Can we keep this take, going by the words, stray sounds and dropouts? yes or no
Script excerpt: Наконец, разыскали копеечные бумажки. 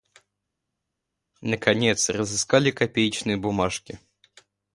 yes